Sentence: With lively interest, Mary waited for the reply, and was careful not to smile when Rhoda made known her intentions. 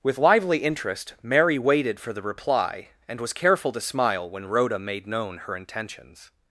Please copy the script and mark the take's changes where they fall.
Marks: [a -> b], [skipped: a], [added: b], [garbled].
With lively interest, Mary waited for the reply, and was careful [skipped: not] to smile when Rhoda made known her intentions.